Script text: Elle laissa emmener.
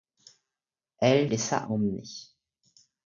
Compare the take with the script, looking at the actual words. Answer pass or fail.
pass